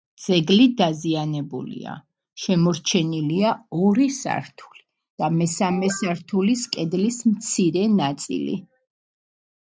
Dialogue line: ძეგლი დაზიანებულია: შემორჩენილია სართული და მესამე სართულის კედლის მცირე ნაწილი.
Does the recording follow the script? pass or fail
fail